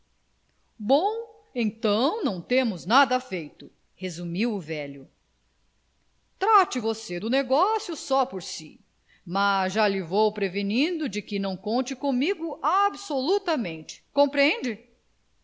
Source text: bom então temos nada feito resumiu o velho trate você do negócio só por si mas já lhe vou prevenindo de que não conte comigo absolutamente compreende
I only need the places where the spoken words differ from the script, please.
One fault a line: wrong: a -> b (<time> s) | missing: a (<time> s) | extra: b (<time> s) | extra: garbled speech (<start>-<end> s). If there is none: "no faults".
extra: não (2.2 s)